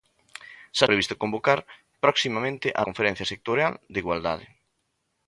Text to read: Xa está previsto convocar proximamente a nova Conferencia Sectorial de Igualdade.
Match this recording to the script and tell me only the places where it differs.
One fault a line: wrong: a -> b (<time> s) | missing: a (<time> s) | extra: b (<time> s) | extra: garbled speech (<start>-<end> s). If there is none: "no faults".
missing: está (0.8 s)
missing: nova (2.8 s)